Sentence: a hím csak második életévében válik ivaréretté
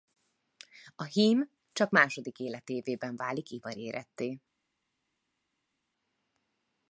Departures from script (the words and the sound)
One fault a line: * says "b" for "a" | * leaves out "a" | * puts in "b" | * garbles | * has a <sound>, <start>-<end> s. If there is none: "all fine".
all fine